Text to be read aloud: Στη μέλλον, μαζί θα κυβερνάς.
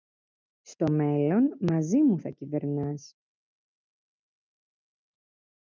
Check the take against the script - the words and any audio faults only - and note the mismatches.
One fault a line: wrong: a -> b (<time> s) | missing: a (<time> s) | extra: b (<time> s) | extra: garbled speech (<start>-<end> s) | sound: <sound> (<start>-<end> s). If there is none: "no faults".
wrong: Στη -> Στο (0.6 s)
extra: μου (2.0 s)